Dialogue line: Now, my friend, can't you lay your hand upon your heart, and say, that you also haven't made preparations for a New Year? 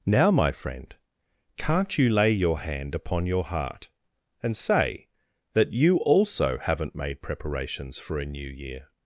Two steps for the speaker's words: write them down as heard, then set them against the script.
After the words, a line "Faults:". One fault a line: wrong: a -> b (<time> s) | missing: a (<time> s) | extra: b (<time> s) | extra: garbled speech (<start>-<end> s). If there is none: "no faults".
Now, my friend, can't you lay your hand upon your heart, and say, that you also haven't made preparations for a New Year?
Faults:
no faults